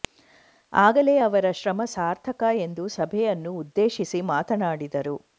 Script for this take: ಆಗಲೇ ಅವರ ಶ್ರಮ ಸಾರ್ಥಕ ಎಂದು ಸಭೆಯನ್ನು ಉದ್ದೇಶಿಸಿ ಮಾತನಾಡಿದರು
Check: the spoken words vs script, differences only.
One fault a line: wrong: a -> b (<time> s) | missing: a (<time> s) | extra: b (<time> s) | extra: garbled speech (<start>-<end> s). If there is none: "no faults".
no faults